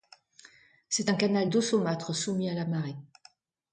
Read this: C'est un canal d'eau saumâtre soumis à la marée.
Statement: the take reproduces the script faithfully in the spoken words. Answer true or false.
true